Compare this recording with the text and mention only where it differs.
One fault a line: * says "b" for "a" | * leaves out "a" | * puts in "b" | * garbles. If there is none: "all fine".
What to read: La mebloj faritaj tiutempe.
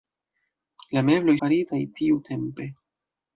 all fine